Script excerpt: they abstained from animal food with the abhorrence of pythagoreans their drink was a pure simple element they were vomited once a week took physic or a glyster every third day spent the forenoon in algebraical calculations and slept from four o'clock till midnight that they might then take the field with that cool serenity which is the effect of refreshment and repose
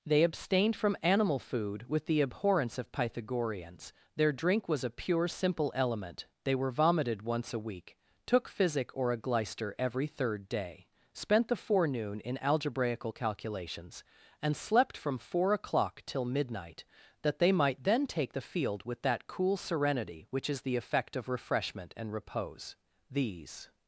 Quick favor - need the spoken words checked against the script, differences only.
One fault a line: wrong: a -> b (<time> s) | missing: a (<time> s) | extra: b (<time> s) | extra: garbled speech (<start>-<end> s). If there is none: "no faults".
extra: these (23.1 s)